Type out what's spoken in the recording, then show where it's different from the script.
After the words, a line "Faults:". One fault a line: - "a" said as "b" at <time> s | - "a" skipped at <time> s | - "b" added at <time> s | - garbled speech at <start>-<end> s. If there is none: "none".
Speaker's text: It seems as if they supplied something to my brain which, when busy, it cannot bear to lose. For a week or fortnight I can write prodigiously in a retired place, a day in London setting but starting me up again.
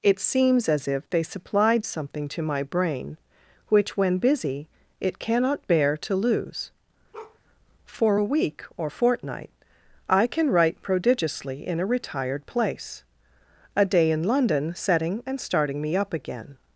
It seems as if they supplied something to my brain which, when busy, it cannot bear to lose. For a week or fortnight I can write prodigiously in a retired place, a day in London setting and starting me up again.
Faults:
- "but" said as "and" at 15.3 s